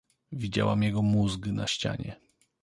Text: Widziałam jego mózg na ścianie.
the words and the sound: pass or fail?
pass